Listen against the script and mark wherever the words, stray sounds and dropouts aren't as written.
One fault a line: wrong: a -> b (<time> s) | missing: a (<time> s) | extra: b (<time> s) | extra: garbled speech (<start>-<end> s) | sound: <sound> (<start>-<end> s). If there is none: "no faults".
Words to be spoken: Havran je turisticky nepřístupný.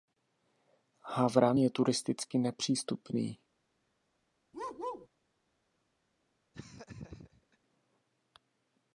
sound: bark (4.5-5.1 s)
sound: laugh (6.5-7.6 s)